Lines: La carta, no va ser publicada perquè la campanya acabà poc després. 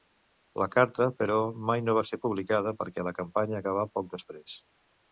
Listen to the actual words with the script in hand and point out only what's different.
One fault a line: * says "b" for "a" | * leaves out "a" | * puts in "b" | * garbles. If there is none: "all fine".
* puts in "però mai"